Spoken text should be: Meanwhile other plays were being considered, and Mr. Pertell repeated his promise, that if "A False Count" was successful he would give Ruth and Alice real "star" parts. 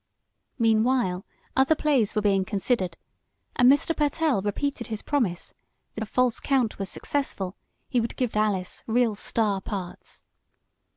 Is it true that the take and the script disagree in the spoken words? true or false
true